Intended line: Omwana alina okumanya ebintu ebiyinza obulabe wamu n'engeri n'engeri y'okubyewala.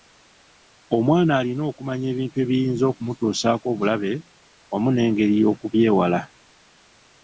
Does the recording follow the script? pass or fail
fail